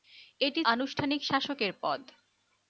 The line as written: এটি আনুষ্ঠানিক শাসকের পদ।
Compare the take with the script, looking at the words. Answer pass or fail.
pass